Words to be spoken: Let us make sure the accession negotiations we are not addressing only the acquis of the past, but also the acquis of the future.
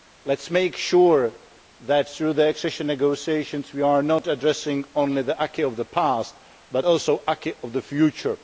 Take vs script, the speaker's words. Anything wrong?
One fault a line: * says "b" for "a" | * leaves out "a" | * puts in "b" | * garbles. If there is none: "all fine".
* puts in "that through"